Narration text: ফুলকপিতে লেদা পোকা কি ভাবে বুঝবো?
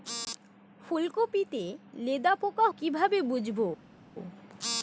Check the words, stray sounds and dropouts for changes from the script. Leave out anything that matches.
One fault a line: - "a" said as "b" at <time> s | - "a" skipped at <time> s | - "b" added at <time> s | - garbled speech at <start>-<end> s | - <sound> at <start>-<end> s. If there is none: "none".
none